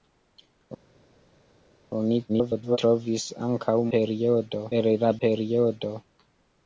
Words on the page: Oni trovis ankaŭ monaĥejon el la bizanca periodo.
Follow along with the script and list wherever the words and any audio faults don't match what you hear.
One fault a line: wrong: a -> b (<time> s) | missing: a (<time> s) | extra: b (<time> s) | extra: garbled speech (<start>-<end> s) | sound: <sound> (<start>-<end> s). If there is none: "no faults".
extra: garbled speech (2.3-2.8 s)
wrong: monaĥejon -> periodo (4.0 s)
missing: bizanca (5.1 s)